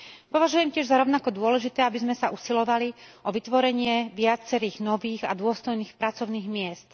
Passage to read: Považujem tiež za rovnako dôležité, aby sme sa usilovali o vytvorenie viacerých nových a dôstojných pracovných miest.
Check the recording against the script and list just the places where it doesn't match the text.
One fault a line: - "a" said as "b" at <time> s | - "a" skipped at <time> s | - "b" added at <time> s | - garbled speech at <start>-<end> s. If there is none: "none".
none